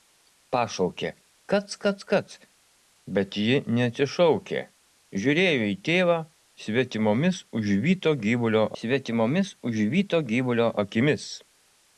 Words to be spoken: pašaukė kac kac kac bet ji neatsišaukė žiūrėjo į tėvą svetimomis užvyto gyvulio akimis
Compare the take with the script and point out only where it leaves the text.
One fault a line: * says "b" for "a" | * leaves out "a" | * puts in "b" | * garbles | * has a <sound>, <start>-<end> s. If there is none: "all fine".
* puts in "svetimomis užvyto gyvulio"